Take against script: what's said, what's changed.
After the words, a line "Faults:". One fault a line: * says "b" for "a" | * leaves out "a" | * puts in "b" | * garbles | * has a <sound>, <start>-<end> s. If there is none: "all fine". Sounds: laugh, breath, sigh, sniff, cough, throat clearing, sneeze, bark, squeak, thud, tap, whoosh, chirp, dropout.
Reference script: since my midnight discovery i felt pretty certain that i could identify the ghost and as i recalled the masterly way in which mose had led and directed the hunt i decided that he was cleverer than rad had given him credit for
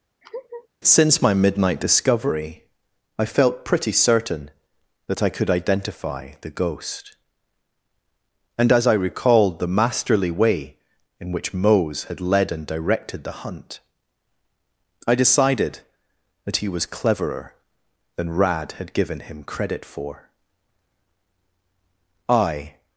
since my midnight discovery i felt pretty certain that i could identify the ghost and as i recalled the masterly way in which mose had led and directed the hunt i decided that he was cleverer than rad had given him credit for i
Faults:
* has a laugh, 0.2-0.7 s
* puts in "i"